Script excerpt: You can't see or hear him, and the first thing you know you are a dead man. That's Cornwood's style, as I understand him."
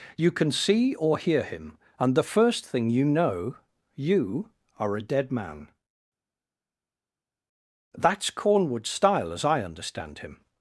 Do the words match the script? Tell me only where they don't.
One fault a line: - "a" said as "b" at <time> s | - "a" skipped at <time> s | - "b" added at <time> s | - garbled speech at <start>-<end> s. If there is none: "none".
- "can't" said as "can" at 0.3 s